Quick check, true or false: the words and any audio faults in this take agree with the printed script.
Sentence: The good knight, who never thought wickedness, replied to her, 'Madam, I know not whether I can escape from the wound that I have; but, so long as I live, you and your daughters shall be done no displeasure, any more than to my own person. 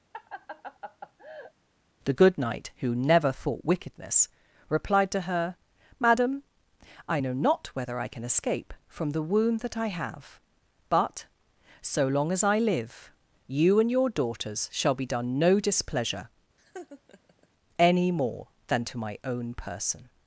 false